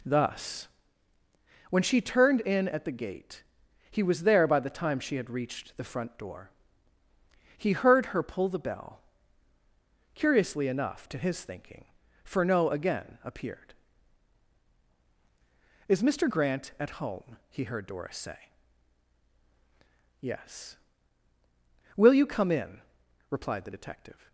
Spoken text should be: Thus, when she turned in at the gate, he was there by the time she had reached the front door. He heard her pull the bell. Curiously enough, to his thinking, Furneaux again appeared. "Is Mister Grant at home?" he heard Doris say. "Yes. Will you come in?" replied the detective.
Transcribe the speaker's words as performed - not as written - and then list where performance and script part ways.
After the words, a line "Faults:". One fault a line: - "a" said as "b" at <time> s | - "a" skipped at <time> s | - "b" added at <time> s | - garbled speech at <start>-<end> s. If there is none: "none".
Thus, when she turned in at the gate, he was there by the time she had reached the front door. He heard her pull the bell. Curiously enough, to his thinking, Furneaux again appeared. "Is Mister Grant at home?" he heard Doris say. "Yes. Will you come in?" replied the detective.
Faults:
none